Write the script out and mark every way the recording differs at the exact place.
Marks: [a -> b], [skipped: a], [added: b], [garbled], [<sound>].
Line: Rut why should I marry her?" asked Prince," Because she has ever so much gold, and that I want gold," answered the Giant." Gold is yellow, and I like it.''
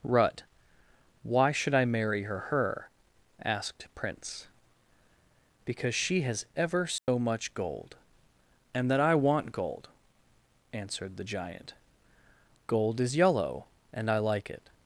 Rut why should I marry her?" [added: her] asked Prince," Because she has ever so [dropout] much gold, and that I want gold," answered the Giant." Gold is yellow, and I like it.''